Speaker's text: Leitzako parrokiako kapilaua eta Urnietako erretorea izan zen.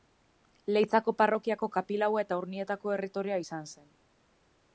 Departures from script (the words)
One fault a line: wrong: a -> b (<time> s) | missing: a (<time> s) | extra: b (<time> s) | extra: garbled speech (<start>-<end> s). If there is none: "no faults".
no faults